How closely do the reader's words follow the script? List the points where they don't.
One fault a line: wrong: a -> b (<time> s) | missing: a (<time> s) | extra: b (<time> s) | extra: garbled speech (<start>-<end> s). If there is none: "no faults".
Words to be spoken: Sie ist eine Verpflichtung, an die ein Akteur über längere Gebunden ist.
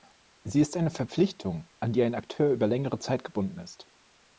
extra: Zeit (3.0 s)